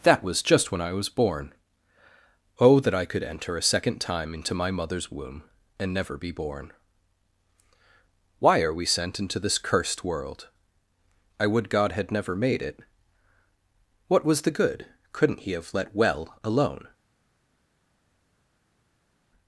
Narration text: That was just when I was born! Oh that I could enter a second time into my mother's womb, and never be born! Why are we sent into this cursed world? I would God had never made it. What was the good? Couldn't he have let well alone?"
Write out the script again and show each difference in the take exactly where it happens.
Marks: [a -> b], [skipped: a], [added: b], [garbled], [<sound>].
That was just when I was born! Oh that I could enter a second time into my mother's womb, and never be born! Why are we sent into this cursed world? I would God had never made it. What was the good? Couldn't he have let well alone?"